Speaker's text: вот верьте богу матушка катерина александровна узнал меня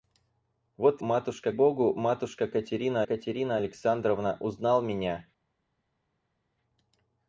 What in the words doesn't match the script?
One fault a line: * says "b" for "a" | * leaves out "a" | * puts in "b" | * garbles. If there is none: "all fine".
* says "матушка" for "верьте"
* puts in "катерина"